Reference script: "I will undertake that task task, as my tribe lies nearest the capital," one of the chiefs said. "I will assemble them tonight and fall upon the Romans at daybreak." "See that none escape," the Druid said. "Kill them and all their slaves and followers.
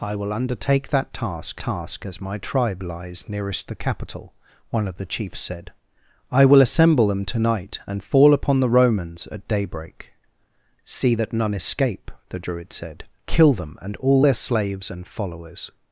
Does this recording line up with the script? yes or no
yes